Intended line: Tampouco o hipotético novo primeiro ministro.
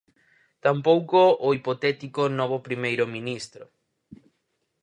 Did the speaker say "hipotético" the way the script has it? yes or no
yes